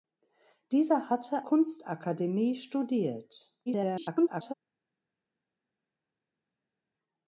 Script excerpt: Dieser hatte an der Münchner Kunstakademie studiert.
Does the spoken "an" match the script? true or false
false